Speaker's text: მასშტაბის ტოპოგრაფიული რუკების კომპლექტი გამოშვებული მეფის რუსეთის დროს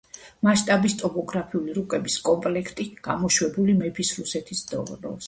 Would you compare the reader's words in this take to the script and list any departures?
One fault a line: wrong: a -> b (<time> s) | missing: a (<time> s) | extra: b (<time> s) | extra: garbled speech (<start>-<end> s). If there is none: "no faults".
no faults